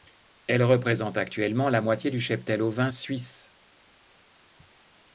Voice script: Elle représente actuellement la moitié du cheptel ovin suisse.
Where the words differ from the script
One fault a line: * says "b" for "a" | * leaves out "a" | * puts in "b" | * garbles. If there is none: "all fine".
all fine